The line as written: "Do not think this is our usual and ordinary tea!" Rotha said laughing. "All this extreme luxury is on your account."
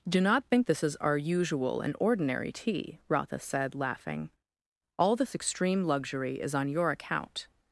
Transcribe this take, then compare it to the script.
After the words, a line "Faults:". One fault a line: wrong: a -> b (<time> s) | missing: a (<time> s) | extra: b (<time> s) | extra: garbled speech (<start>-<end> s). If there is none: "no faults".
"Do not think this is our usual and ordinary tea!" Rotha said laughing. "All this extreme luxury is on your account."
Faults:
no faults